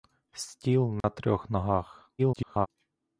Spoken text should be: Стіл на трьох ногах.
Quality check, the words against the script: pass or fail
fail